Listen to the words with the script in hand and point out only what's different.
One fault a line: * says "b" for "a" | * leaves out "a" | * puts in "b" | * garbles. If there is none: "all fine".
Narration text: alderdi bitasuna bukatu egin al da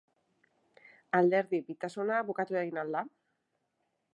all fine